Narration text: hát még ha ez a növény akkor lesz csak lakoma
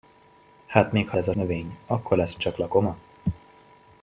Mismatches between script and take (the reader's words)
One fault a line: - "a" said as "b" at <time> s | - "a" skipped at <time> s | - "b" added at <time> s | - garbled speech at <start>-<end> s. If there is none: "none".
none